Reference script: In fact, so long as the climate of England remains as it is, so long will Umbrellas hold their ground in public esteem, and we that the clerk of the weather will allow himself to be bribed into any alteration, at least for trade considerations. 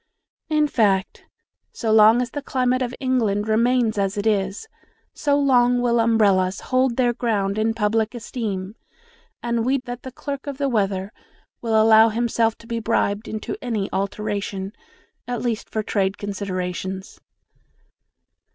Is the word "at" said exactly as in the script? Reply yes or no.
yes